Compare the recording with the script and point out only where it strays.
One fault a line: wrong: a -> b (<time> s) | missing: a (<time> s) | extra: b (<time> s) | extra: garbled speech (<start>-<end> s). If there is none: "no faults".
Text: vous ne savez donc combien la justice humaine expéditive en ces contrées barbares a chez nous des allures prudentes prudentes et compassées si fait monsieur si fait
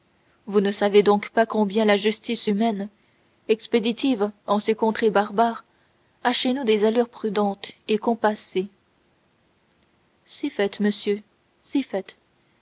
extra: pas (1.3 s)
missing: prudentes (7.7 s)